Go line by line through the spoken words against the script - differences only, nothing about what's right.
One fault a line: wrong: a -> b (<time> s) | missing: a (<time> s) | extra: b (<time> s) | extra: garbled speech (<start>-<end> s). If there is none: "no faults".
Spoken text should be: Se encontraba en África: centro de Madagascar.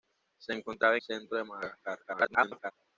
missing: en África (1.0 s)
extra: garbled speech (2.0-2.7 s)